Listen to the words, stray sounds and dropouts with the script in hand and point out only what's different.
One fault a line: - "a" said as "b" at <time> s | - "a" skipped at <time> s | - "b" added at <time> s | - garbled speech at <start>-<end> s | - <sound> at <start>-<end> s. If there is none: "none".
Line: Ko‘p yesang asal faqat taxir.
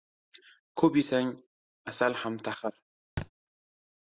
- "faqat" said as "ham" at 2.2 s
- thud at 3.2-3.3 s